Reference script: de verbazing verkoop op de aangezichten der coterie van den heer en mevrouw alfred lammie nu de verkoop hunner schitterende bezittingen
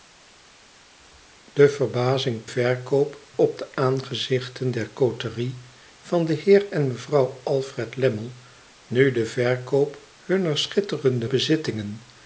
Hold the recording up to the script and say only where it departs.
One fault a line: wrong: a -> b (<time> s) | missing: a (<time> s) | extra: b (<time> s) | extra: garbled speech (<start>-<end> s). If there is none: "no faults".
no faults